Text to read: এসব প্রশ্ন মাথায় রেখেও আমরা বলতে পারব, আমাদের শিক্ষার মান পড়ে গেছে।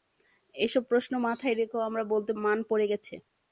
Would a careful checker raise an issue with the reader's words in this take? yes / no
yes